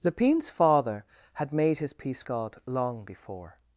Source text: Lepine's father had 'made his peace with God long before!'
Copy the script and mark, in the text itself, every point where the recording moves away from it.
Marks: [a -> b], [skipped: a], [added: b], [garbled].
Lepine's father had 'made his peace [skipped: with] God long before!'